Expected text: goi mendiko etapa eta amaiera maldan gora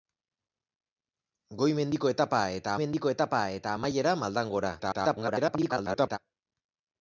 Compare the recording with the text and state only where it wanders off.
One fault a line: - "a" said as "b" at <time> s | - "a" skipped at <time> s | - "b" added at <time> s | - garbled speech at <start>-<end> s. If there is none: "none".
- "mendiko etapa eta" added at 2.8 s
- garbled speech at 4.8-6.2 s